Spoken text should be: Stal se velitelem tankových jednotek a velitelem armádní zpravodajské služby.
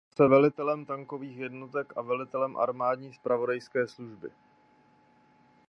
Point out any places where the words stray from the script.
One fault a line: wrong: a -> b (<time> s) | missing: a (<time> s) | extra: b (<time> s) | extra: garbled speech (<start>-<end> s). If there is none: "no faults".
no faults